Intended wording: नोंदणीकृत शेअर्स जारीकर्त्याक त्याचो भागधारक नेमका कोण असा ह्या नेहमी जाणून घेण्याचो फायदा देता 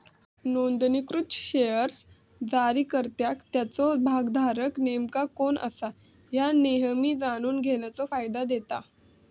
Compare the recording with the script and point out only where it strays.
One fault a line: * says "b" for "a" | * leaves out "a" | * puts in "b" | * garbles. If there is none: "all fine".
all fine